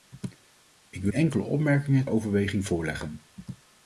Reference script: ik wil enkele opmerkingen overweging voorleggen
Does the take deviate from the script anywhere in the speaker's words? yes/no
no